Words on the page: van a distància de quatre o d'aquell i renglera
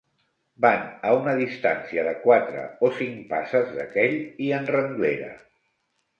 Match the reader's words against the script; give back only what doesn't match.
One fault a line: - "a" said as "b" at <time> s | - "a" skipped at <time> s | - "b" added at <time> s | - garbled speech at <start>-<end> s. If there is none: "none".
- "una" added at 1.2 s
- "cinc passes" added at 3.0 s
- "en" added at 4.6 s